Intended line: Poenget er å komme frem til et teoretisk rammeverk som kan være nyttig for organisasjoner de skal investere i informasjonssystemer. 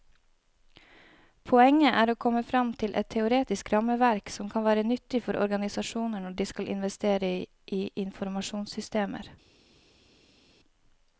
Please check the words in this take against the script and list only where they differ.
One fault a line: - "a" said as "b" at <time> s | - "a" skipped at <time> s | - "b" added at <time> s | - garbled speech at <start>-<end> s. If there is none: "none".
- "når" added at 6.2 s